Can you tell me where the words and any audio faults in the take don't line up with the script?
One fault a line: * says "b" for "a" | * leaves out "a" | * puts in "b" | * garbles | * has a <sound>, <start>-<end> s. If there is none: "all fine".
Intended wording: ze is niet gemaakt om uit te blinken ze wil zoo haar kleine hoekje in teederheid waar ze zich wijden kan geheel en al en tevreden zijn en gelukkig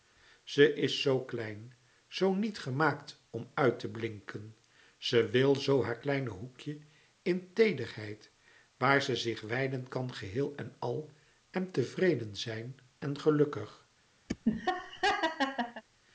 * puts in "zoo klein zoo"
* has a laugh, 14.3-15.8 s